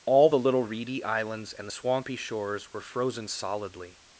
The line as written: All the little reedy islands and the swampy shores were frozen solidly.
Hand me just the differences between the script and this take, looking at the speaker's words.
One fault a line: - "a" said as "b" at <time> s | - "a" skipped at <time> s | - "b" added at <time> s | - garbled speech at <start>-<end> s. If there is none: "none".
none